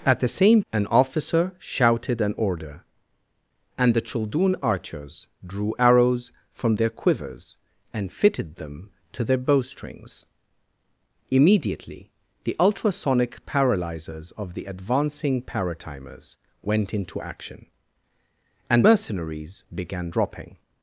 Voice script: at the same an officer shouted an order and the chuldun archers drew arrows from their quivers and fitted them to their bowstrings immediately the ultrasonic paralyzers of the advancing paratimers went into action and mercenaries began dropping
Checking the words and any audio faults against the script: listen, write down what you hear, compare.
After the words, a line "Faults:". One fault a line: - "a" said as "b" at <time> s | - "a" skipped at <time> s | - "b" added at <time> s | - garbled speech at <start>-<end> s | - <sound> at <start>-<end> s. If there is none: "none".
at the same an officer shouted an order and the chuldun archers drew arrows from their quivers and fitted them to their bowstrings immediately the ultrasonic paralyzers of the advancing paratimers went into action and mercenaries began dropping
Faults:
none